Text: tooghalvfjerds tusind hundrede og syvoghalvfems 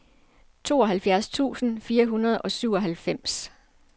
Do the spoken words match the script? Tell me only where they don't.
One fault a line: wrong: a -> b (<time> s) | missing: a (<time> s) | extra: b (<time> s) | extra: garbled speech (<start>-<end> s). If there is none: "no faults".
extra: fire (1.8 s)